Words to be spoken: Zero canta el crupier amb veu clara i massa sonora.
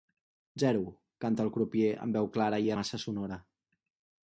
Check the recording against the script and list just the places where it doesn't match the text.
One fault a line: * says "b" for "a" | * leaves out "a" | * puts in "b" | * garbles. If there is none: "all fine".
all fine